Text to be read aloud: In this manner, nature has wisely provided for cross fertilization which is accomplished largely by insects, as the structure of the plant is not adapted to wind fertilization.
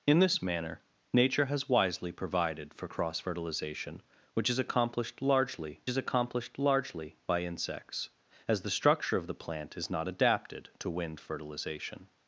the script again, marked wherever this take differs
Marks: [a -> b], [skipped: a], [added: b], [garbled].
In this manner, nature has wisely provided for cross fertilization which is accomplished largely [added: is accomplished largely] by insects, as the structure of the plant is not adapted to wind fertilization.